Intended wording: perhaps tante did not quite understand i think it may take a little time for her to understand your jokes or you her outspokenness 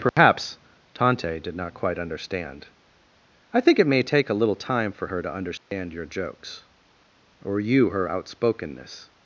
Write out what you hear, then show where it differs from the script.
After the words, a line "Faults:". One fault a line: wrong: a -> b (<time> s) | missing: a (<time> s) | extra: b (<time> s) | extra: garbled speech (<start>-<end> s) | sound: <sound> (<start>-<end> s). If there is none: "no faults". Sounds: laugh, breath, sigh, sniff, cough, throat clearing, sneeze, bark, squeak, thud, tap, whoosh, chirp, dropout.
perhaps tante did not quite understand i think it may take a little time for her to understand your jokes or you her outspokenness
Faults:
sound: dropout (0.1-0.2 s)
sound: dropout (5.6-5.7 s)